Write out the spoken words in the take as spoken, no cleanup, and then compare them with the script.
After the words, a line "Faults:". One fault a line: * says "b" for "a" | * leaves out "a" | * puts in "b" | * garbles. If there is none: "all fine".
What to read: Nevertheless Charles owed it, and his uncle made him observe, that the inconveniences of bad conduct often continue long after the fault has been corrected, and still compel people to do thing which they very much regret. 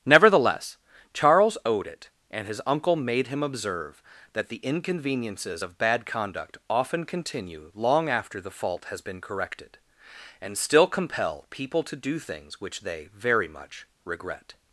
Nevertheless Charles owed it, and his uncle made him observe, that the inconveniences of bad conduct often continue long after the fault has been corrected, and still compel people to do things which they very much regret.
Faults:
* says "things" for "thing"